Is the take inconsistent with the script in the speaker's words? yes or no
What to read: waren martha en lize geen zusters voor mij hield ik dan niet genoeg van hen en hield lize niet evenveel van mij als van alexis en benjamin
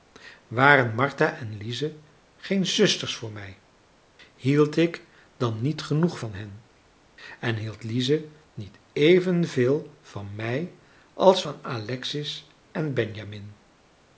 no